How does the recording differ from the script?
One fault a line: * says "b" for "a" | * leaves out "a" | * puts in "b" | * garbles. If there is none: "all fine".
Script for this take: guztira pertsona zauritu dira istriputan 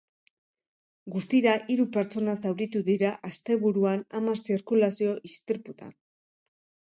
* puts in "hiru"
* puts in "asteburuan hamar zirkulazio"